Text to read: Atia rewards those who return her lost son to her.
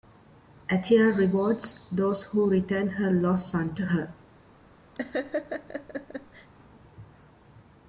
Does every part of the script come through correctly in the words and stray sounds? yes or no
no